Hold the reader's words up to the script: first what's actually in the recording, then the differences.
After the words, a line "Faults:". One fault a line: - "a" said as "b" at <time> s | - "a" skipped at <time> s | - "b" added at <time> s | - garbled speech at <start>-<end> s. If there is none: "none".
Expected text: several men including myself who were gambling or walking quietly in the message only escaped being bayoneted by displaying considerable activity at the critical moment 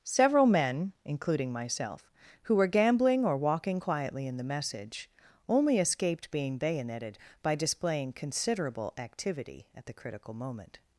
several men including myself who were gambling or walking quietly in the message only escaped being bayoneted by displaying considerable activity at the critical moment
Faults:
none